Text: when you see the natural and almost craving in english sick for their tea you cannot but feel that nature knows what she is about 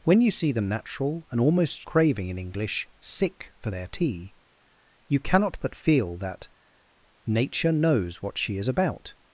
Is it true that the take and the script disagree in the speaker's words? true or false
false